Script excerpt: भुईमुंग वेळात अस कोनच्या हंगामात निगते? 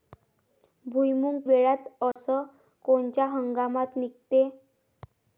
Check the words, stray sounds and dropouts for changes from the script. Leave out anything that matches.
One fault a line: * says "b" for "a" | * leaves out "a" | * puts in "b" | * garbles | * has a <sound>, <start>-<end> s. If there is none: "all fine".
* has a dropout, 2.1-2.2 s